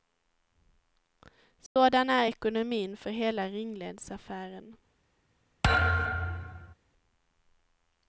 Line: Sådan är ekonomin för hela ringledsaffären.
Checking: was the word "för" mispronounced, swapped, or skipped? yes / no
no